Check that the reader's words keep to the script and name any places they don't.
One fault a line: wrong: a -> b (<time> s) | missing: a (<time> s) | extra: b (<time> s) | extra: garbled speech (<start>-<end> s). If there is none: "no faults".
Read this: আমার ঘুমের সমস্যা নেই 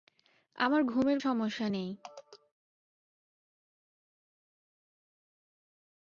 no faults